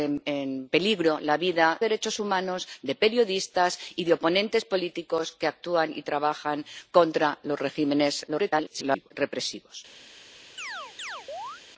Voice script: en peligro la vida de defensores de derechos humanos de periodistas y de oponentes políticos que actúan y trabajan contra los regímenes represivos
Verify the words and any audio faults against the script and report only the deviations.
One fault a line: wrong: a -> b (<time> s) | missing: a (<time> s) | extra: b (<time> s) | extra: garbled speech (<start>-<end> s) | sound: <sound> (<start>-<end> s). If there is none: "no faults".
missing: de defensores de (1.8 s)
extra: garbled speech (8.3-9.1 s)
sound: chirp (10.6-11.6 s)